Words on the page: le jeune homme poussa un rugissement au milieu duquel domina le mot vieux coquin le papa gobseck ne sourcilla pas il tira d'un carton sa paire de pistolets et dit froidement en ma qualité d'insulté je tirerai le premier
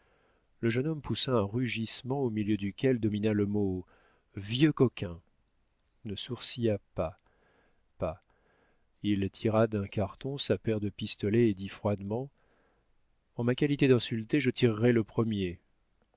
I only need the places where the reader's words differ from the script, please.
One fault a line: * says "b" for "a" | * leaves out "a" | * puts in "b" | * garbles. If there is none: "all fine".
* leaves out "le papa gobseck"
* puts in "pas"